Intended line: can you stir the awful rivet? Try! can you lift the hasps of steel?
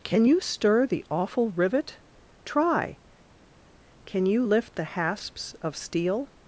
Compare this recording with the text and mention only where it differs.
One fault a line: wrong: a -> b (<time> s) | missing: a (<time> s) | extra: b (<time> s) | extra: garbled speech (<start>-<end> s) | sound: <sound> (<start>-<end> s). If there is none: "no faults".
no faults